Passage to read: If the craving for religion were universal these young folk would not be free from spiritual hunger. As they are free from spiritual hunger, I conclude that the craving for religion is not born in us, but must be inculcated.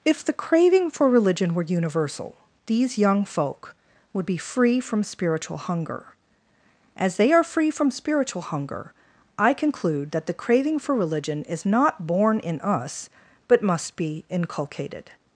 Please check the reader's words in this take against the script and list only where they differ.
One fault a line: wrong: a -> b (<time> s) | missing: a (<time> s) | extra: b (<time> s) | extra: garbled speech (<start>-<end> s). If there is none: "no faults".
missing: not (4.2 s)